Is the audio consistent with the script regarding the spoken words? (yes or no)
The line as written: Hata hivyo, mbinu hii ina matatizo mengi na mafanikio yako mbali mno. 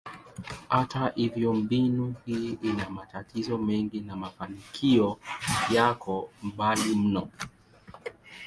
yes